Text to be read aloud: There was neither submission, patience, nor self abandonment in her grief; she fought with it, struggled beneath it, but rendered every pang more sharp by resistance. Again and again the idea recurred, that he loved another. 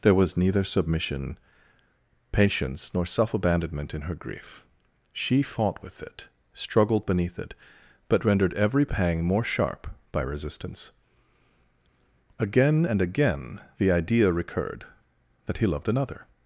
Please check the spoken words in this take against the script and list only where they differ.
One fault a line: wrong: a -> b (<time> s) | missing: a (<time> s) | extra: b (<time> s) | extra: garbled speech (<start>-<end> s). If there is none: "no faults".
no faults